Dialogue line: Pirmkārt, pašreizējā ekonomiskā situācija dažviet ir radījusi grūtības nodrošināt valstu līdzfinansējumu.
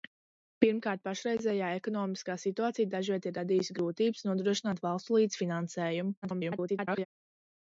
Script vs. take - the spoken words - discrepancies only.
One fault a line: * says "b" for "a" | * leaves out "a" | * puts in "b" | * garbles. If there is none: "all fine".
* garbles